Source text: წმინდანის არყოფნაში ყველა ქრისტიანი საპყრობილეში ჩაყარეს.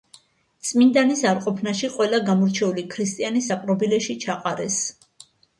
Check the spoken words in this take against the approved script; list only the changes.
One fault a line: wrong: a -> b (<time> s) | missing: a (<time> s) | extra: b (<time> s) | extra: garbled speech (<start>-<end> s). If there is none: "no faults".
extra: გამორჩეული (2.3 s)